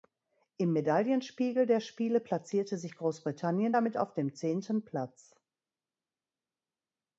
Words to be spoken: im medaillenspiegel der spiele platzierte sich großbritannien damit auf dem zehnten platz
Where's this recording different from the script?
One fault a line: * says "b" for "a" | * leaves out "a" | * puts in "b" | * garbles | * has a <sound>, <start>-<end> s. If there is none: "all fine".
all fine